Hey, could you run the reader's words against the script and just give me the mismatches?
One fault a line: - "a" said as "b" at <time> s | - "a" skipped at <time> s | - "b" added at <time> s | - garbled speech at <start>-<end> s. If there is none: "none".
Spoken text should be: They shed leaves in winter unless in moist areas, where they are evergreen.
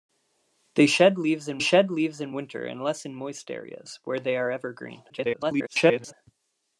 - "shed leaves in" added at 1.6 s
- garbled speech at 5.1-6.1 s